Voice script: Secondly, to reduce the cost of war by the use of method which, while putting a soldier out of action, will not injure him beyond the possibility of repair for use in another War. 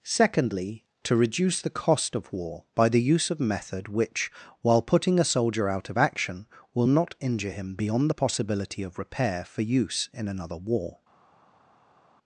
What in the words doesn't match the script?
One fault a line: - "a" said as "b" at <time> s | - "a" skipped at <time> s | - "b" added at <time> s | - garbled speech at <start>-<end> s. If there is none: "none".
none